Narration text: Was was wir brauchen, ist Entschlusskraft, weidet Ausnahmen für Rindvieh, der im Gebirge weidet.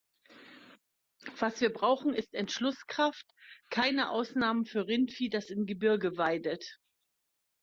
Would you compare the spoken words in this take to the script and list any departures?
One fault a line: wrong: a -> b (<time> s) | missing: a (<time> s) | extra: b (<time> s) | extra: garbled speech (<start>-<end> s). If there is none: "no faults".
missing: was (1.6 s)
wrong: weidet -> keine (3.7 s)
wrong: der -> das (5.3 s)